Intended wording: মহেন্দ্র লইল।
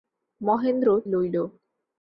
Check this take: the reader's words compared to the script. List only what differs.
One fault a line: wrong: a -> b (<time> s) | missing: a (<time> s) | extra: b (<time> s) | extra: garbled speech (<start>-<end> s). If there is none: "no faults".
no faults